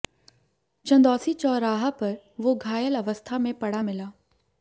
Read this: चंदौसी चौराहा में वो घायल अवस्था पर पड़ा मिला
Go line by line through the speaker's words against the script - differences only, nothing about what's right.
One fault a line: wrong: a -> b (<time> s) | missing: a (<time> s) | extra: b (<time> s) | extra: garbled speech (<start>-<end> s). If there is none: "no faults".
wrong: में -> पर (2.0 s)
wrong: पर -> में (3.4 s)